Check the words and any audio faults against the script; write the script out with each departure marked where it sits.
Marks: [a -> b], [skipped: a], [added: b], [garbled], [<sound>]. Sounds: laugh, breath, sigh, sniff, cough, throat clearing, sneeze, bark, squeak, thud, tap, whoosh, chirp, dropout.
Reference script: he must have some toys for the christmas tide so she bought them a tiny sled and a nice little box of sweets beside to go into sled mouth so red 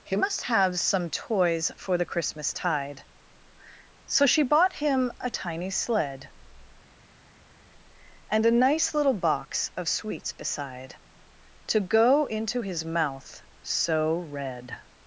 he must have some toys for the christmas tide so she bought [them -> him] a tiny sled and a nice little box of sweets beside to go into [sled -> his] mouth so red